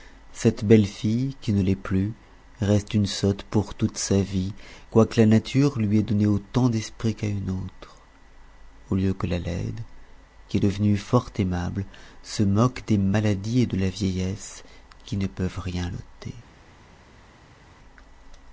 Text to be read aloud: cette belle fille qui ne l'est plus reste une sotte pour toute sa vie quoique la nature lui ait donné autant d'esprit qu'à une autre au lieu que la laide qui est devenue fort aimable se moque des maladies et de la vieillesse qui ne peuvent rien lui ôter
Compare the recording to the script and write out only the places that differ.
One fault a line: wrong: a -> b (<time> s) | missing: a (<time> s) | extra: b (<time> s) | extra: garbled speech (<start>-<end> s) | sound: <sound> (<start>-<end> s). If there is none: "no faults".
missing: lui (15.9 s)